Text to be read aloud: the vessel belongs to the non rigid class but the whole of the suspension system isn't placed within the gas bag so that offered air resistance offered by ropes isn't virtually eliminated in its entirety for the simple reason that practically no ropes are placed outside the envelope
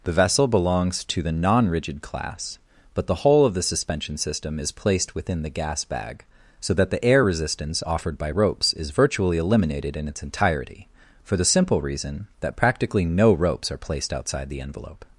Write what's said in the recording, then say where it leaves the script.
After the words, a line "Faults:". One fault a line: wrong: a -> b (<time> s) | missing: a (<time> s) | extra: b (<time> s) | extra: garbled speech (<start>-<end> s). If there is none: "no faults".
the vessel belongs to the non rigid class but the whole of the suspension system is placed within the gas bag so that the air resistance offered by ropes is virtually eliminated in its entirety for the simple reason that practically no ropes are placed outside the envelope
Faults:
wrong: isn't -> is (4.6 s)
wrong: offered -> the (6.9 s)
wrong: isn't -> is (8.7 s)